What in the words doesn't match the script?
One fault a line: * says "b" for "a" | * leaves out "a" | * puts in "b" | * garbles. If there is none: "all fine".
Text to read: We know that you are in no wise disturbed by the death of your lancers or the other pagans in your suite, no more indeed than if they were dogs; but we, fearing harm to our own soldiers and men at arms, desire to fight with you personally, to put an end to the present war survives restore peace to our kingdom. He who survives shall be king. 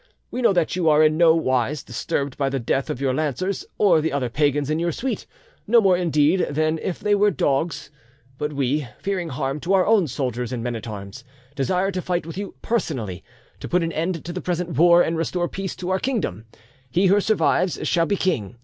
* says "and" for "survives"